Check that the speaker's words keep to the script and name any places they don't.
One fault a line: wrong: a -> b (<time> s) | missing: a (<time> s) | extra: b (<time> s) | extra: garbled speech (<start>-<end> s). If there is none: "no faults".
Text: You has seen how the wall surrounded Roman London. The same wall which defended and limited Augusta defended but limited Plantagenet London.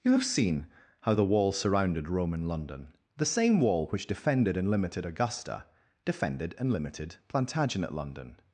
wrong: has -> have (0.1 s)
wrong: but -> and (6.6 s)